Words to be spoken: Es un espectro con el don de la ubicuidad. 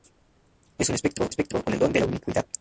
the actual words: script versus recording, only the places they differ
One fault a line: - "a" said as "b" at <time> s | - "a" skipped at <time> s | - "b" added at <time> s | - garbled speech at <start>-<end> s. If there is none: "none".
- "espectro" added at 1.3 s